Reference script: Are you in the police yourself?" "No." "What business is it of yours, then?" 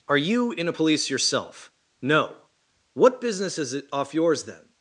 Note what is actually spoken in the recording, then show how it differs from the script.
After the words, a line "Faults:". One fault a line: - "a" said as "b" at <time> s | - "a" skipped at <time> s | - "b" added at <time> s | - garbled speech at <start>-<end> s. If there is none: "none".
Are you in a police yourself?" "No." "What business is it off yours, then?"
Faults:
- "the" said as "a" at 0.7 s
- "of" said as "off" at 3.9 s